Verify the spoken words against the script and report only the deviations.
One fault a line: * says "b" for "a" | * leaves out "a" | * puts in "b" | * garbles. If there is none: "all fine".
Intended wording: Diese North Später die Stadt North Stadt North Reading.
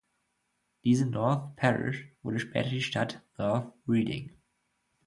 * puts in "Parish wurde"
* leaves out "Stadt North"